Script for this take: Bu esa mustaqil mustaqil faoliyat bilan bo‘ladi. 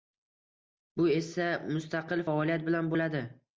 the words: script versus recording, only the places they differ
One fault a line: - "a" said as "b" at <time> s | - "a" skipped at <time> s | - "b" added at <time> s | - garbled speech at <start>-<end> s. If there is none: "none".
- "mustaqil" skipped at 2.3 s